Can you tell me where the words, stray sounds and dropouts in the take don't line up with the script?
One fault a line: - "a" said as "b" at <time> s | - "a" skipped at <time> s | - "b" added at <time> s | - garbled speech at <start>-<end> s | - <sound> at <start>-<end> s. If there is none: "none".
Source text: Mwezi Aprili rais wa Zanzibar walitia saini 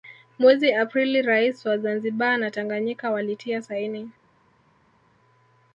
- "na Tanganyika" added at 2.4 s